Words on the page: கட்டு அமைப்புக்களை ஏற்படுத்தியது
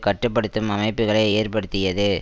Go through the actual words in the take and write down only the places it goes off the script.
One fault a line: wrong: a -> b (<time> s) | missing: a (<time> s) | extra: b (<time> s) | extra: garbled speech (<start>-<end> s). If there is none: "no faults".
extra: படுத்தும் (0.3 s)